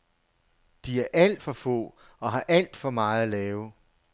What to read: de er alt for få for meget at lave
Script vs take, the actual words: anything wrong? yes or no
yes